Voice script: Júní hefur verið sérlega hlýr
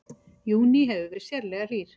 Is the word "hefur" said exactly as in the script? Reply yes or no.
yes